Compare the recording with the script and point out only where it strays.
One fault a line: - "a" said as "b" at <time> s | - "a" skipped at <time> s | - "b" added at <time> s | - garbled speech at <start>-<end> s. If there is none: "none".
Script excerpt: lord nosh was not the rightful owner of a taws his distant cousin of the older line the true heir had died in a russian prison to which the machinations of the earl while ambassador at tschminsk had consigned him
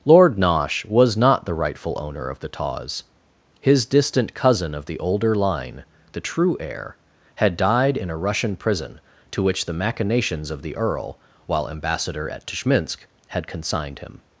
- "a" said as "the" at 2.4 s